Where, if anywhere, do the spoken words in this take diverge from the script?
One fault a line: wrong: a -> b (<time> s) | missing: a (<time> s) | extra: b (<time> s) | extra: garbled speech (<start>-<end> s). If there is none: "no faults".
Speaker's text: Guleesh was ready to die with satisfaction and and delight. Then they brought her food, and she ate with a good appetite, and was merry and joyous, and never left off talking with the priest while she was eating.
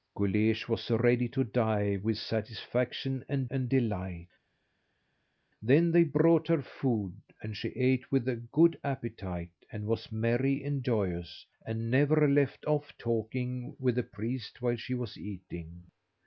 no faults